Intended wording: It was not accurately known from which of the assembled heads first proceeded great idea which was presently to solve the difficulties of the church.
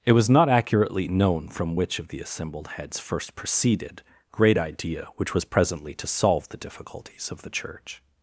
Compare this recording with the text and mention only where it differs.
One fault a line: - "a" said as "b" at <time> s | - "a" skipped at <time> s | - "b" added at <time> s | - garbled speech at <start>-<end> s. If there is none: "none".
none